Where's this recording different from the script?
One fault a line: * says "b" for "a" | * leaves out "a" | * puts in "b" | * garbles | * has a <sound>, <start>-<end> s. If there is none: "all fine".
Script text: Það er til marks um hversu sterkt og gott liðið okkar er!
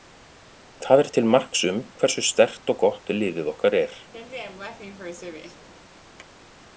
* has a laugh, 4.1-5.7 s